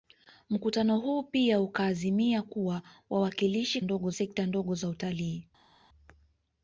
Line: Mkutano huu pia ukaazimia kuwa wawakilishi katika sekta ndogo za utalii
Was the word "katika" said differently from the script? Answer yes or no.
yes